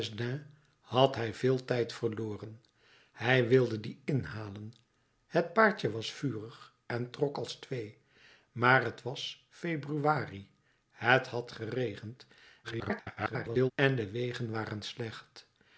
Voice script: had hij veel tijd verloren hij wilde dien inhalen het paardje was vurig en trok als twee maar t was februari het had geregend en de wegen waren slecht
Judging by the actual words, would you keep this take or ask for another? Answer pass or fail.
fail